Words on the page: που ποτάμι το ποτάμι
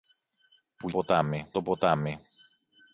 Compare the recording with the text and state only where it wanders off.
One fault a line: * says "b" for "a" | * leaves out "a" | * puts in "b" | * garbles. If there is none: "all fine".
all fine